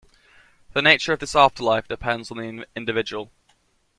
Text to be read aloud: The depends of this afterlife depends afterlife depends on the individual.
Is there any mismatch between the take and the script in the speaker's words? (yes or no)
yes